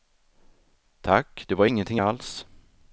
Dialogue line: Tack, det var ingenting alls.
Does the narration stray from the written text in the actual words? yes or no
no